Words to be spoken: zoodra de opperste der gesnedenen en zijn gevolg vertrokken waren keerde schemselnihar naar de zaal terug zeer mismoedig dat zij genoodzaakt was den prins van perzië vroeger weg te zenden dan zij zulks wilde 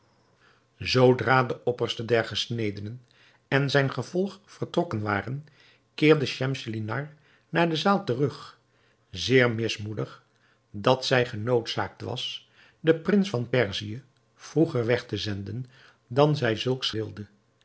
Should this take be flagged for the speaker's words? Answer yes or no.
no